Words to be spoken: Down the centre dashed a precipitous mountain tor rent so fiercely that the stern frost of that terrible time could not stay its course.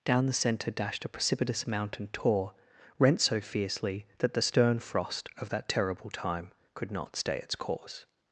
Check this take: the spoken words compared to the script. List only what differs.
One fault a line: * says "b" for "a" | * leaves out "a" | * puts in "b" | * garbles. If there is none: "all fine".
all fine